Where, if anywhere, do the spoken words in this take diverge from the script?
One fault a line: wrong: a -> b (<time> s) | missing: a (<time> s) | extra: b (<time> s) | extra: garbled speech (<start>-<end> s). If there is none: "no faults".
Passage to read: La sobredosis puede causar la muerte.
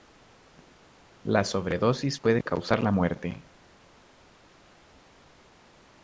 no faults